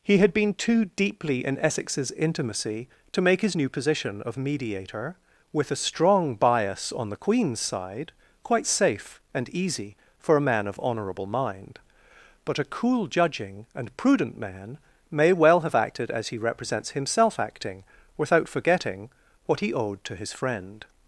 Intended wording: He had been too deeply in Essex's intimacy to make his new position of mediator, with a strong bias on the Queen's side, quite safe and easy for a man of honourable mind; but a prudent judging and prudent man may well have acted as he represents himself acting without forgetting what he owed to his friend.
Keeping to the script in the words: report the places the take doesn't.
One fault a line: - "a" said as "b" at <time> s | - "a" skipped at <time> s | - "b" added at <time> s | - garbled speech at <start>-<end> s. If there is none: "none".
- "prudent" said as "cool" at 12.6 s